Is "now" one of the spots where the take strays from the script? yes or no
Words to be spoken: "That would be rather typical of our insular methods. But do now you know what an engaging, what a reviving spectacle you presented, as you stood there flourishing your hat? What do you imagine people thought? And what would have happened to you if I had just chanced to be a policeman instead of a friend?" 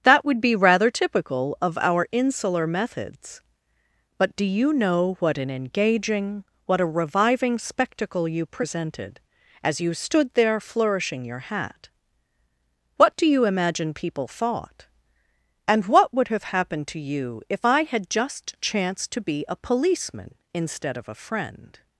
yes